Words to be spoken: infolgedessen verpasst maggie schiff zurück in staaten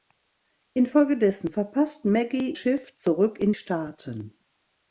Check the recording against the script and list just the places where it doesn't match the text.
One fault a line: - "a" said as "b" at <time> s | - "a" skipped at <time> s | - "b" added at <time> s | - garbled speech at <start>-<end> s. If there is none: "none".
none